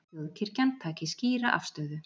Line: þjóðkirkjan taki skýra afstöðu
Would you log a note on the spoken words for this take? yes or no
no